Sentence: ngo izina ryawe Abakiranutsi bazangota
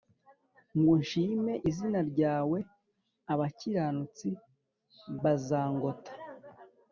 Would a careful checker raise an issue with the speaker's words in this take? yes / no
yes